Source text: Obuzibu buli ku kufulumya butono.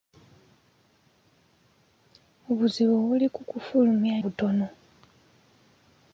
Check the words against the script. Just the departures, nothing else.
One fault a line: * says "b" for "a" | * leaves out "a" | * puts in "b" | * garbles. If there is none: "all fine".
all fine